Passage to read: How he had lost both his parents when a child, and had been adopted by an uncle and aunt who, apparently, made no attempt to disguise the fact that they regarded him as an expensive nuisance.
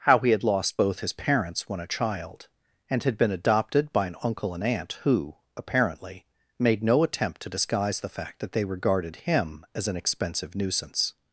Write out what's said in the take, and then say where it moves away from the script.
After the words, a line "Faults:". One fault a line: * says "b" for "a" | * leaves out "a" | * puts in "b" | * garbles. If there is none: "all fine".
How he had lost both his parents when a child, and had been adopted by an uncle and aunt who, apparently, made no attempt to disguise the fact that they regarded him as an expensive nuisance.
Faults:
all fine